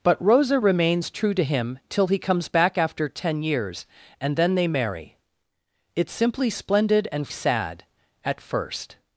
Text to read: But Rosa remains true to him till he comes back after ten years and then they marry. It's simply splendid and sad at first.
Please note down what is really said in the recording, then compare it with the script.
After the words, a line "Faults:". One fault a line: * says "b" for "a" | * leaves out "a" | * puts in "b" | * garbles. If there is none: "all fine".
But Rosa remains true to him till he comes back after ten years and then they marry. It's simply splendid and sad at first.
Faults:
all fine